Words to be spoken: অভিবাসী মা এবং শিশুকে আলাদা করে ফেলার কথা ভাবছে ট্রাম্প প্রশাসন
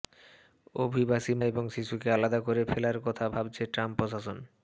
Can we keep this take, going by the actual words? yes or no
no